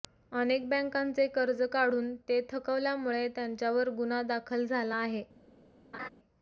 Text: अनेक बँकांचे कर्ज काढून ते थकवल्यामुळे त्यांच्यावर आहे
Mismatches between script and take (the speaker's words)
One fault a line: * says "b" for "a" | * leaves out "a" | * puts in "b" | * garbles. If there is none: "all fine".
* puts in "गुन्हा दाखल झाला"